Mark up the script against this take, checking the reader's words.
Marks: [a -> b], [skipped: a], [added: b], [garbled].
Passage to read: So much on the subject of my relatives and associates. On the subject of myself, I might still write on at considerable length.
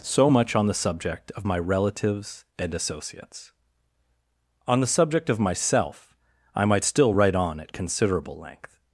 So much on the subject of my relatives and associates. On the subject of myself, I might still write on at considerable length.